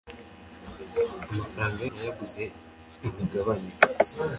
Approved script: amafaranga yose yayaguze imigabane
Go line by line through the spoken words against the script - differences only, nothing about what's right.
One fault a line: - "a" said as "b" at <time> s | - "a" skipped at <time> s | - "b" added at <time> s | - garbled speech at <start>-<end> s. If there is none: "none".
- "yose" skipped at 1.8 s